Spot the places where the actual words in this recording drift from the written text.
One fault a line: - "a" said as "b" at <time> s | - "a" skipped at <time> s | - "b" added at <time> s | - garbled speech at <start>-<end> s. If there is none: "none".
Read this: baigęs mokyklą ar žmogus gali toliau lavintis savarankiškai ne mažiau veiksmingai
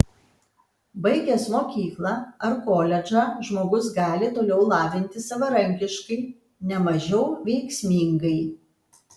- "koledžą" added at 2.7 s